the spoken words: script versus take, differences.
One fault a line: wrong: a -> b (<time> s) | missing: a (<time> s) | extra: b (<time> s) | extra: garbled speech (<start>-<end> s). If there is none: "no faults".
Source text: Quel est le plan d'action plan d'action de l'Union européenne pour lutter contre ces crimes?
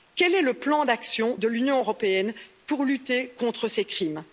missing: plan d'action (1.4 s)